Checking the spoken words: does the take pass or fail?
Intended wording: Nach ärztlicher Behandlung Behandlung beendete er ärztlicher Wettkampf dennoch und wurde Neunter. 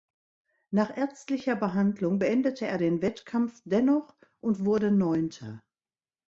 fail